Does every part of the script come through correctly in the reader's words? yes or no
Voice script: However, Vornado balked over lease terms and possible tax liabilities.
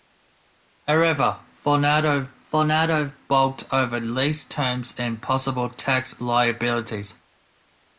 no